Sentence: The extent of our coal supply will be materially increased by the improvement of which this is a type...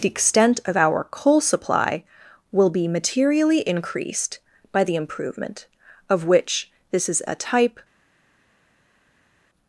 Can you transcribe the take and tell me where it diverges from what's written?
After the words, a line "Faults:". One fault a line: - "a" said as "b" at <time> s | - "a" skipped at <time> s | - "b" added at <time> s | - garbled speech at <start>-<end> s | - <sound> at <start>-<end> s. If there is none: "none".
The extent of our coal supply will be materially increased by the improvement of which this is a type...
Faults:
none